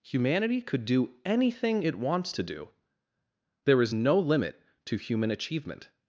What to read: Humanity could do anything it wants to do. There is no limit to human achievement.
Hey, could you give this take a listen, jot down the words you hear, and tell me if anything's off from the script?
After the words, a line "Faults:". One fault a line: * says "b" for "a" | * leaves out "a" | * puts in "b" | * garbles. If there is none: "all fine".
Humanity could do anything it wants to do. There is no limit to human achievement.
Faults:
all fine